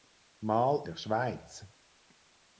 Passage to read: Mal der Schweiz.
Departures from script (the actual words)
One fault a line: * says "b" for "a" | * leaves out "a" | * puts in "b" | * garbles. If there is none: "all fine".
all fine